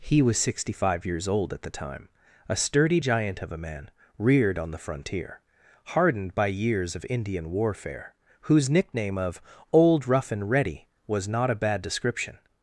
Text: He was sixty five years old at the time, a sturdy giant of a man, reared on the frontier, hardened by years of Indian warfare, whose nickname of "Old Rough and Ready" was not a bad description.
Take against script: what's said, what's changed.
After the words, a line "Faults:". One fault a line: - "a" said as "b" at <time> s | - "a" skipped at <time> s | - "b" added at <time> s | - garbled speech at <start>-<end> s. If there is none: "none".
He was sixty five years old at the time, a sturdy giant of a man, reared on the frontier, hardened by years of Indian warfare, whose nickname of "Old Rough and Ready" was not a bad description.
Faults:
none